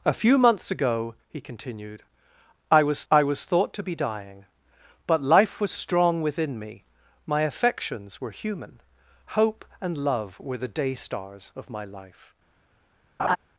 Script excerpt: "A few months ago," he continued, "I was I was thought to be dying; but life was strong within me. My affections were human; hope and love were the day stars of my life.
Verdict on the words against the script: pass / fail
pass